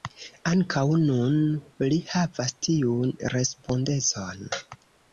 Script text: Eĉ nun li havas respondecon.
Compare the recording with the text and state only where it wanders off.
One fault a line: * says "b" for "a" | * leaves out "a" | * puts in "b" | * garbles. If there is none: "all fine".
* says "Ankaŭ" for "Eĉ"
* puts in "tiun"